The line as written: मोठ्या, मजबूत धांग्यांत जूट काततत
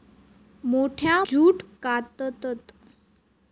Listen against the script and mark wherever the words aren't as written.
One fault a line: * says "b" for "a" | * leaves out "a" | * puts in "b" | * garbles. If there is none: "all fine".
* leaves out "मजबूत धांग्यांत"